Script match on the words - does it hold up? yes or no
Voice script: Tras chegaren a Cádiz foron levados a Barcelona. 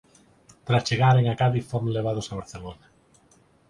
yes